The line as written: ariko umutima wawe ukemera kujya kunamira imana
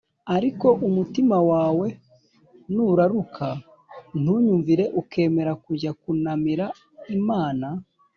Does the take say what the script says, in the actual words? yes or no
no